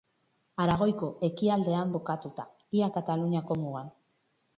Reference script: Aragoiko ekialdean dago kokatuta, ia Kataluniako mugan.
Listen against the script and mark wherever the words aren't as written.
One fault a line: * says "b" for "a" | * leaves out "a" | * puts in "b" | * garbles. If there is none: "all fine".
* leaves out "dago"